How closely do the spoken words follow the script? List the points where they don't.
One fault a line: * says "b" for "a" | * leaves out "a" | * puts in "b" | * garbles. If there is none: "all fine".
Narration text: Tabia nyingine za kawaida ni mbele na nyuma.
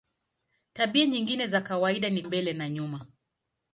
all fine